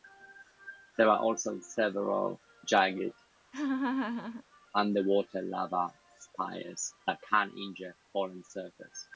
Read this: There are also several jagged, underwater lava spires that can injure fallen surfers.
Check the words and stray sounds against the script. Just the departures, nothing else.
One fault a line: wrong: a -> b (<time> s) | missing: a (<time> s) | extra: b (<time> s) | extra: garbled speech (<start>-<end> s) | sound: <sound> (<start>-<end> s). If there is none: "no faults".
sound: laugh (3.5-4.4 s)